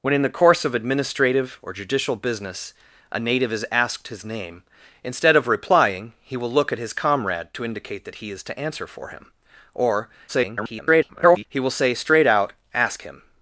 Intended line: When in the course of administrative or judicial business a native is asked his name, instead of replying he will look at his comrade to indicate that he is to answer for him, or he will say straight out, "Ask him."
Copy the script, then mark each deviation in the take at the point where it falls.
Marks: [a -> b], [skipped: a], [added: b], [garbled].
When in the course of administrative or judicial business a native is asked his name, instead of replying he will look at his comrade to indicate that he is to answer for him, or [garbled] he will say straight out, "Ask him."